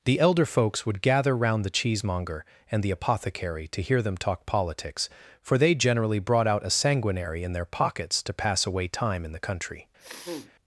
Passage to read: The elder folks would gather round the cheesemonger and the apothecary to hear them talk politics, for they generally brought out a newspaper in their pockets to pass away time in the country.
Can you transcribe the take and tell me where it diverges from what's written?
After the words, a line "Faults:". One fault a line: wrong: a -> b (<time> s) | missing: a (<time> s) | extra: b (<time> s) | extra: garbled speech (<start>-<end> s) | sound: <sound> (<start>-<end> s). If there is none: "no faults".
The elder folks would gather round the cheesemonger and the apothecary to hear them talk politics, for they generally brought out a sanguinary in their pockets to pass away time in the country.
Faults:
wrong: newspaper -> sanguinary (6.7 s)
sound: sniff (10.0-10.5 s)